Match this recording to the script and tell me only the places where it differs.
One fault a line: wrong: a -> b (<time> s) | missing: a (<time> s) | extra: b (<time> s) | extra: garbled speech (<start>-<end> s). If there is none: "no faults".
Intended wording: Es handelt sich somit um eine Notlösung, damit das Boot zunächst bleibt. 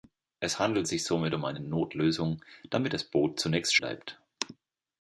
no faults